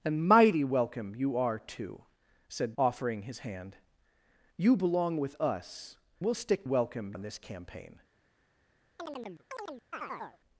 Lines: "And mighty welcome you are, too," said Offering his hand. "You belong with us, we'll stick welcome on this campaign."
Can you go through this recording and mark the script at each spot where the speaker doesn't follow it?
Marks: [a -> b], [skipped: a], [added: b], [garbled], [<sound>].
"And mighty welcome you are, too," said Offering his hand. "You belong with us, we'll stick welcome on this campaign." [chirp]